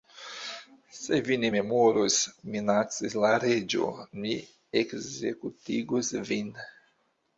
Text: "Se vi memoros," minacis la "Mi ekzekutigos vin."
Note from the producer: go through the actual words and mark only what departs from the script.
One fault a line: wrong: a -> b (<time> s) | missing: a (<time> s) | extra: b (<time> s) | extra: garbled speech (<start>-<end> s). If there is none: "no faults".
extra: ne (1.4 s)
extra: Reĝo (3.5 s)